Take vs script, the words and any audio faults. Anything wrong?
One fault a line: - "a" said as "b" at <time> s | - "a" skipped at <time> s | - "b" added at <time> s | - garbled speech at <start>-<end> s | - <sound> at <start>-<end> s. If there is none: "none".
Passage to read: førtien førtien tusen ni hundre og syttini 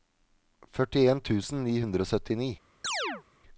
- "førtien" skipped at 1.2 s
- chirp at 2.8-3.2 s